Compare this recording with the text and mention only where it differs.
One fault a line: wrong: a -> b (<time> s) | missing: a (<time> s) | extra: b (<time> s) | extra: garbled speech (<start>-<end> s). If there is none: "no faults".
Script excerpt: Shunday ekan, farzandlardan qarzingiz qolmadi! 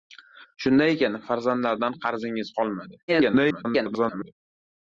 extra: garbled speech (3.1-4.3 s)